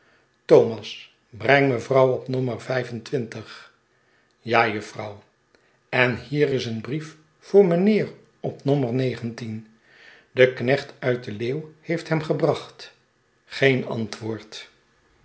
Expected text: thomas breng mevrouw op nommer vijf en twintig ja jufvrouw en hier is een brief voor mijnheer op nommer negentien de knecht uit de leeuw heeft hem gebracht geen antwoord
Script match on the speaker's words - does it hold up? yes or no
yes